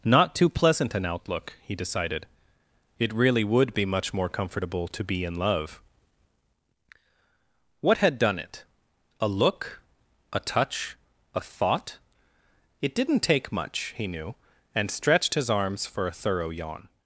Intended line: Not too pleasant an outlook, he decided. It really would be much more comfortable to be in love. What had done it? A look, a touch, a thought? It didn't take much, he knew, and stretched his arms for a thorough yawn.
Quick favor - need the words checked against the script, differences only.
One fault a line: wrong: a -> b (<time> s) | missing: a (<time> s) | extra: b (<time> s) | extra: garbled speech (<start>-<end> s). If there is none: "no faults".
no faults